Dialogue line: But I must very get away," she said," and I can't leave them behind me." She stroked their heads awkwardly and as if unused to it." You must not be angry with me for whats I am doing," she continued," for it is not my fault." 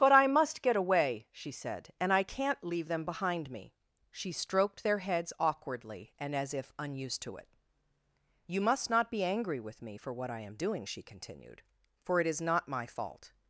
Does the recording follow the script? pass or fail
fail